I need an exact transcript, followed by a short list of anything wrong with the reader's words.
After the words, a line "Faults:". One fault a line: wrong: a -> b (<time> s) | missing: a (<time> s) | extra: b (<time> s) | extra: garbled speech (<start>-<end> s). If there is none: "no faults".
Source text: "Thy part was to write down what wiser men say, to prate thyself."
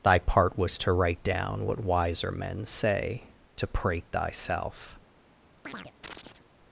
"Thy part was to write down what wiser men say, to prate thyself."
Faults:
no faults